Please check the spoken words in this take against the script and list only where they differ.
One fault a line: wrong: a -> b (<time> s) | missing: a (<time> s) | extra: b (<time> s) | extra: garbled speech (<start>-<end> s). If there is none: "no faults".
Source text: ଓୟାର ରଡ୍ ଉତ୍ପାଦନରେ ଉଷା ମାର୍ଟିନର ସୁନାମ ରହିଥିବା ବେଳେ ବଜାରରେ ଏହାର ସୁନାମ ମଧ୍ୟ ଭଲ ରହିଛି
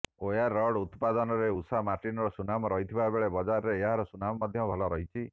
no faults